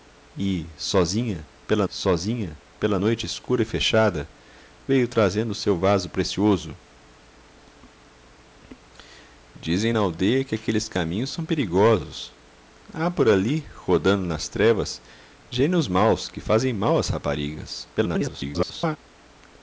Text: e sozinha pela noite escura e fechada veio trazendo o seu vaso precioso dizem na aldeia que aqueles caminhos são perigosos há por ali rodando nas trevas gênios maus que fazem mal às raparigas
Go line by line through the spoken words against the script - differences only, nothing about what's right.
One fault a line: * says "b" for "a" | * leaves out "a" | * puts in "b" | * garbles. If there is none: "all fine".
* puts in "sozinha pela"
* garbles